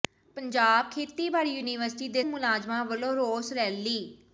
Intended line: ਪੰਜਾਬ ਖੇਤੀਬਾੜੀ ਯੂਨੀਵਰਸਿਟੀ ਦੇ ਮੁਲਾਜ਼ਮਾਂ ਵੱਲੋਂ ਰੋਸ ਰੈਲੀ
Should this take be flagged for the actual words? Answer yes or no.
no